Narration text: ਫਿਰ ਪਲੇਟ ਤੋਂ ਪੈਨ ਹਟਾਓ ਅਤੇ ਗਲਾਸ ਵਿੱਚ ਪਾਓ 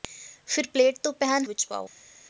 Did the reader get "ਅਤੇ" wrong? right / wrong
wrong